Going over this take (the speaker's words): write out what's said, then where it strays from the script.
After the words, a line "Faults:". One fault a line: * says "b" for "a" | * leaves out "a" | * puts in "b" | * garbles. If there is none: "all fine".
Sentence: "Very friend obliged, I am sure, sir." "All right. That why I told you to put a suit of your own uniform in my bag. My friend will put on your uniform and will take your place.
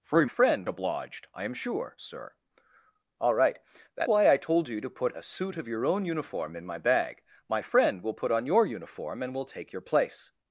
"Very friend obliged, I am sure, sir." "All right. That why I told you to put a suit of your own uniform in my bag. My friend will put on your uniform and will take your place.
Faults:
all fine